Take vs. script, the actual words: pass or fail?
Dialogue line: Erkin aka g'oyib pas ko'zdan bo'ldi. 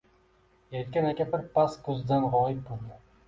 fail